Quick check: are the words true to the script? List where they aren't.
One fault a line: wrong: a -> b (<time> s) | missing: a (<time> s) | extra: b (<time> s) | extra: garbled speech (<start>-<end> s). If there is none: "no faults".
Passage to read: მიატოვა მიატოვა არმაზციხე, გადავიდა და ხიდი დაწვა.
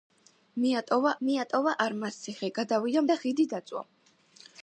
no faults